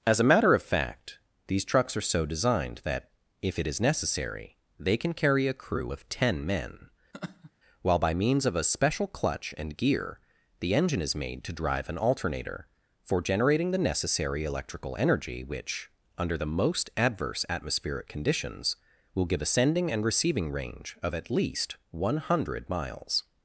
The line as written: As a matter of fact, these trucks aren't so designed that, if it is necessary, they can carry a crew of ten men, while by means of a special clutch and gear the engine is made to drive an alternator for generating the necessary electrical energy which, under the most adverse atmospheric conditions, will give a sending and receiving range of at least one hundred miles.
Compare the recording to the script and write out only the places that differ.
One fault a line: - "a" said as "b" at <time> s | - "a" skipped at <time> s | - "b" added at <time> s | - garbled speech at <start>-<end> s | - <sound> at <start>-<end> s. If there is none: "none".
- "aren't" said as "are" at 1.9 s
- laugh at 7.1-7.5 s